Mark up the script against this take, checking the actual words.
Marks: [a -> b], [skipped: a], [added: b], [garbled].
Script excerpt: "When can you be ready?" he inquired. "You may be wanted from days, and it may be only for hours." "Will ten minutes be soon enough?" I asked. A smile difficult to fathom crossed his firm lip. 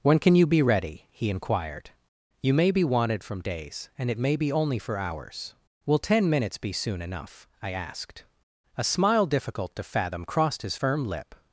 "When can you be ready?" he inquired. "You may be wanted from days, and it may be only for hours." "Will ten minutes be soon enough?" I asked. A smile difficult to fathom crossed his firm lip.